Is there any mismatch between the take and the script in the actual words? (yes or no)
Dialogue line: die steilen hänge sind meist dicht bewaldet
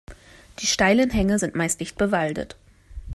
no